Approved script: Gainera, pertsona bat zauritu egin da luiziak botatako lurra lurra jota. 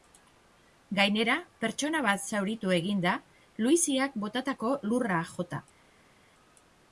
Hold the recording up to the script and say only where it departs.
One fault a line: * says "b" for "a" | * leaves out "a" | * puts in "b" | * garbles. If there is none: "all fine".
* leaves out "lurra"